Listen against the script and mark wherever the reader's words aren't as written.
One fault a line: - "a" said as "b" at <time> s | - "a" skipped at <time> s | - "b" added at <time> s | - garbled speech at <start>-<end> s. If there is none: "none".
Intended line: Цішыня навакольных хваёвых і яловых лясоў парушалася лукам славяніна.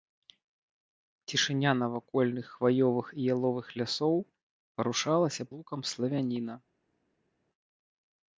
none